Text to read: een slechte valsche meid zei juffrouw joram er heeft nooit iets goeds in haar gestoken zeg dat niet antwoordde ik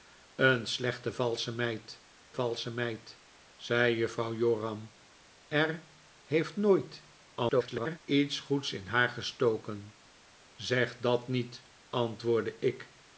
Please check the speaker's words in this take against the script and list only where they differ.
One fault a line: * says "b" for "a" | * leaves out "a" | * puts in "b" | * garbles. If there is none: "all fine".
* puts in "valsche meid"
* garbles